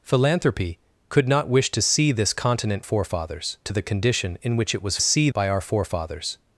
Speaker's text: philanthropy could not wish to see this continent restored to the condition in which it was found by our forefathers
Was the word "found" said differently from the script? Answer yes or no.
yes